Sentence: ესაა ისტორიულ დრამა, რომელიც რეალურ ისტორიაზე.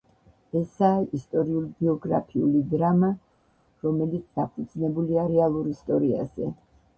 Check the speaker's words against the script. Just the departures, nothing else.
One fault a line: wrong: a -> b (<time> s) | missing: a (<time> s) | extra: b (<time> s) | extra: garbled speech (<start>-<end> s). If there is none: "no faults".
extra: ბიოგრაფიული (1.8 s)
extra: დაფუძნებულია (4.4 s)